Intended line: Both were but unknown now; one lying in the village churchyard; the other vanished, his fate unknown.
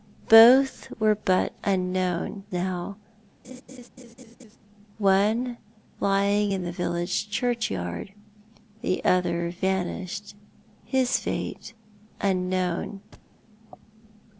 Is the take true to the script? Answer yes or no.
yes